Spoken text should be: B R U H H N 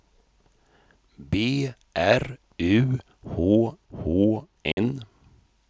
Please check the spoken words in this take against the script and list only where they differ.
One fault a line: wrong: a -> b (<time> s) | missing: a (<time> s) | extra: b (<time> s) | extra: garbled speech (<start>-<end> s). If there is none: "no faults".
no faults